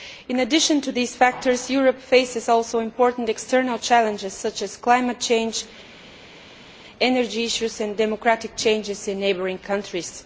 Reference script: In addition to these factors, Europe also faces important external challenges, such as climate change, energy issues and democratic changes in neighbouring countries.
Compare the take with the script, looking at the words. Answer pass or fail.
pass